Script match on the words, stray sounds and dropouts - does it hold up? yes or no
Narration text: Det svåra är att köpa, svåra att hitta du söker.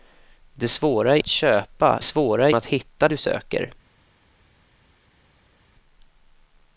yes